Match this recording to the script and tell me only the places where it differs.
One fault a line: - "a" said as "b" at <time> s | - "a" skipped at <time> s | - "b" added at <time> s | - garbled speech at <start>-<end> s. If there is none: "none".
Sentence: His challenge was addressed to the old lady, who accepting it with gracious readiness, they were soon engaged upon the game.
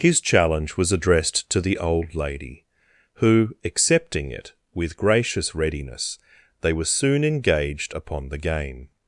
none